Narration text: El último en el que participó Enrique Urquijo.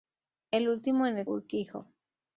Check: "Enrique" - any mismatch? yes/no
yes